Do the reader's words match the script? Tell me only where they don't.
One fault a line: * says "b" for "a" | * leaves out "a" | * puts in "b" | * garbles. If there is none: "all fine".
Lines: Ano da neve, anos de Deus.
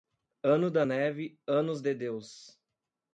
all fine